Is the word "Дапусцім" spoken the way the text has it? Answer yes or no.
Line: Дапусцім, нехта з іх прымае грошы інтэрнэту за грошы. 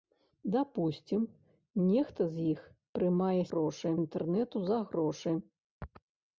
yes